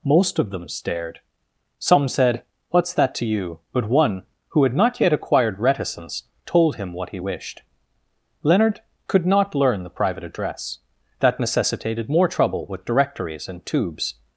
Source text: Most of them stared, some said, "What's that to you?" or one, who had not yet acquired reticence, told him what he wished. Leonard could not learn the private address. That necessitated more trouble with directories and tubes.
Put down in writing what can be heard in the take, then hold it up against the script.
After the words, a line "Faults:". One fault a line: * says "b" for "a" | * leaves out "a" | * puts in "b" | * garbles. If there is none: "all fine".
Most of them stared, some said, "What's that to you?" but one, who had not yet acquired reticence, told him what he wished. Leonard could not learn the private address. That necessitated more trouble with directories and tubes.
Faults:
* says "but" for "or"